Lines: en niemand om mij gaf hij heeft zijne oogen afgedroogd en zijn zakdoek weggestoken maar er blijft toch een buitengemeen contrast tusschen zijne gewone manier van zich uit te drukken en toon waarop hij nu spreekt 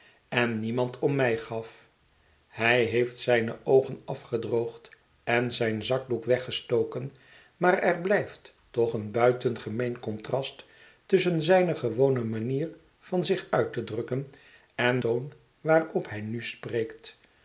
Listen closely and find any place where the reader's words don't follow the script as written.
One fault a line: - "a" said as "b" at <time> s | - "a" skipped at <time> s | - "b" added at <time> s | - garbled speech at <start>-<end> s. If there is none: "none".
none